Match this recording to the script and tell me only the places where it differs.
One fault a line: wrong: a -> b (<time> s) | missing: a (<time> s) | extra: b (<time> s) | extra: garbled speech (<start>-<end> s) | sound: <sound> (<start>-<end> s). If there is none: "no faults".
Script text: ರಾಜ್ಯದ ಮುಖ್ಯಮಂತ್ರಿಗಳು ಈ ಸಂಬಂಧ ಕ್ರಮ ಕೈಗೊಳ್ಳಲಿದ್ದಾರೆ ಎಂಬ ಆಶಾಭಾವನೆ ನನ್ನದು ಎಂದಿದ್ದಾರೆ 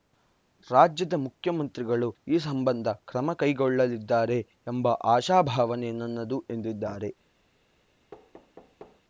sound: thud (8.1-9.0 s)